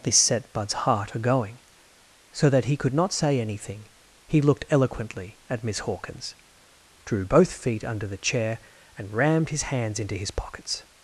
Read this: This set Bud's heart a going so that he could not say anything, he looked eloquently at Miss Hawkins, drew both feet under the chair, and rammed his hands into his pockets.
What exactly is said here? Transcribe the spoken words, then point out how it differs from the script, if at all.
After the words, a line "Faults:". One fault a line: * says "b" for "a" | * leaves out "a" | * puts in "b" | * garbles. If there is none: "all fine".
This set Bud's heart a going so that he could not say anything, he looked eloquently at Miss Hawkins, drew both feet under the chair, and rammed his hands into his pockets.
Faults:
all fine